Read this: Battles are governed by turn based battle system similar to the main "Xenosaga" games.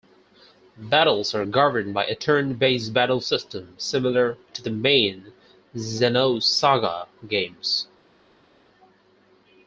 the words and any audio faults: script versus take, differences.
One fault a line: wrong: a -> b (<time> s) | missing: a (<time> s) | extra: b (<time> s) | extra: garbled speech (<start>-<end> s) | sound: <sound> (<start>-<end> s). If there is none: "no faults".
extra: a (2.1 s)